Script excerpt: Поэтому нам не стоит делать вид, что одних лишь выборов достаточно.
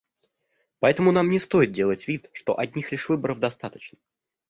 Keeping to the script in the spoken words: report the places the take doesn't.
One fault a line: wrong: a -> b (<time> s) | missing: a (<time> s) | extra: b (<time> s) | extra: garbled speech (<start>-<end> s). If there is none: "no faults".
no faults